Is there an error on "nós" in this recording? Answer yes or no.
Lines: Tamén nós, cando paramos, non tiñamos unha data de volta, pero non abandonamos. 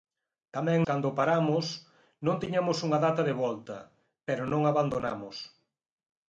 yes